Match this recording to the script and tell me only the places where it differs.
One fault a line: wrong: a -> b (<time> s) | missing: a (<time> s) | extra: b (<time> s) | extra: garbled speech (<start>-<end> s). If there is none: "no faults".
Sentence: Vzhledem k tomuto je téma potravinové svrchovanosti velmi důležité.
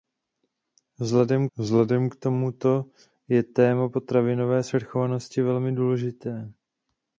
extra: vzhledem (1.6 s)